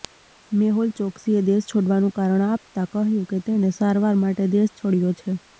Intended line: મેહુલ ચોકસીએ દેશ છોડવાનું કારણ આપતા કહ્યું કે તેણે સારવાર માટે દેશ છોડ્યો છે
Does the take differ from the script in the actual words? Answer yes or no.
no